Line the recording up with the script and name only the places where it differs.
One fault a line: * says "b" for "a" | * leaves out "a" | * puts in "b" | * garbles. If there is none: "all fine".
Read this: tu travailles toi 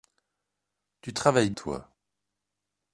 all fine